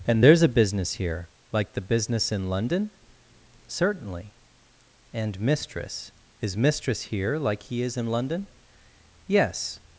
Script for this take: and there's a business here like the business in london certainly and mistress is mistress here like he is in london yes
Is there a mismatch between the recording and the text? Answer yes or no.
no